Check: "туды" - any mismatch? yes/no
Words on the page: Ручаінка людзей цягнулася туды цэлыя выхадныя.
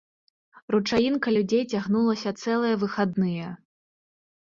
yes